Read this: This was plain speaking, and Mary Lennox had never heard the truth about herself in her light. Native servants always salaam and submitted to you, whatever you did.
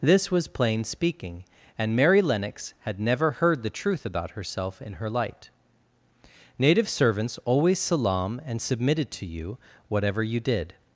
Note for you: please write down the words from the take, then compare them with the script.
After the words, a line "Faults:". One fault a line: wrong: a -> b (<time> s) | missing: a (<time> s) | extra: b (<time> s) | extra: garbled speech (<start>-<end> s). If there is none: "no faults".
This was plain speaking, and Mary Lennox had never heard the truth about herself in her light. Native servants always salaam and submitted to you, whatever you did.
Faults:
no faults